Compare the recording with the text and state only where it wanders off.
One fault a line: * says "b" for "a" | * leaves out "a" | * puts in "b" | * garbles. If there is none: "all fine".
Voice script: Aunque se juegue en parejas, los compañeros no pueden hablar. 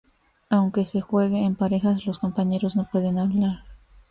all fine